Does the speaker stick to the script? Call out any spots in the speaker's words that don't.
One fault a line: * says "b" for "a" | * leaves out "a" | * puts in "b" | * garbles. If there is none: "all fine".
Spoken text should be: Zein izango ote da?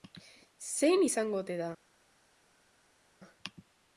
all fine